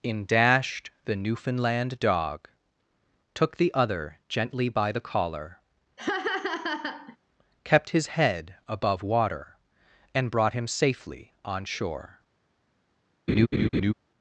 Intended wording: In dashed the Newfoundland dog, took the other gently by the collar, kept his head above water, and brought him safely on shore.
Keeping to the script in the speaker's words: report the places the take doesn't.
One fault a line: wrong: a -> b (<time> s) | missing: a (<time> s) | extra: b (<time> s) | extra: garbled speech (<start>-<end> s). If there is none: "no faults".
no faults